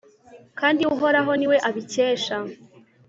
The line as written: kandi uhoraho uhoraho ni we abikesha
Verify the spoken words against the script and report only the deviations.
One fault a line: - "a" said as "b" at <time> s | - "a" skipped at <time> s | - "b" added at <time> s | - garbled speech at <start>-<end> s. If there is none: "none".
- "uhoraho" skipped at 1.3 s